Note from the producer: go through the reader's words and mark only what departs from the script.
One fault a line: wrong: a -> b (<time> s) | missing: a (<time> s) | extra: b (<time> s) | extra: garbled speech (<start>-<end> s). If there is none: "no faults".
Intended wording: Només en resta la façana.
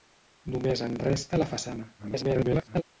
extra: garbled speech (2.0-2.8 s)